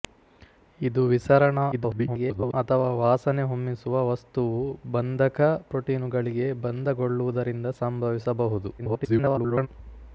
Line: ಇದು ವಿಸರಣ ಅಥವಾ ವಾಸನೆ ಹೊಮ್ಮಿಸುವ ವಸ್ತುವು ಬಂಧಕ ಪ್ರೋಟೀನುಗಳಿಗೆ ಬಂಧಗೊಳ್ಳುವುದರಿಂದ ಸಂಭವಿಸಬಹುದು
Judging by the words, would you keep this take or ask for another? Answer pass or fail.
fail